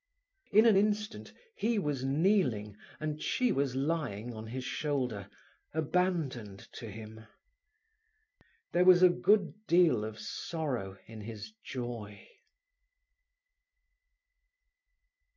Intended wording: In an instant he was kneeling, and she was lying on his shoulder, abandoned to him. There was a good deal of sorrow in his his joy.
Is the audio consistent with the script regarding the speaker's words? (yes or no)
no